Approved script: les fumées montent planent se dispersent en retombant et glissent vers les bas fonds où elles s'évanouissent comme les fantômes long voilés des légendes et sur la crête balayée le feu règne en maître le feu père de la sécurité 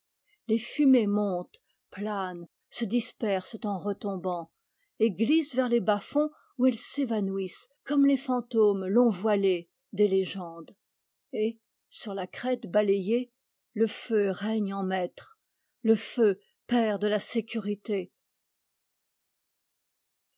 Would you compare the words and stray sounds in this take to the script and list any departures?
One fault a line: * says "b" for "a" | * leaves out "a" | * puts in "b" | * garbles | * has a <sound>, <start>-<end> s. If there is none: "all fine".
all fine